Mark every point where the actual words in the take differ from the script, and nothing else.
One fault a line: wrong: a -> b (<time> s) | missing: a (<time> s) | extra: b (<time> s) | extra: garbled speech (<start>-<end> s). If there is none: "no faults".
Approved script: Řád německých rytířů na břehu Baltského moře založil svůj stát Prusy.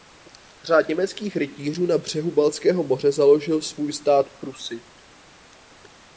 no faults